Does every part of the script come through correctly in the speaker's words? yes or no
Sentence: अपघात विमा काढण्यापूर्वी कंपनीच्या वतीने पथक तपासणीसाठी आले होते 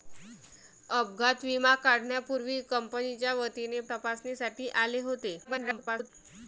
no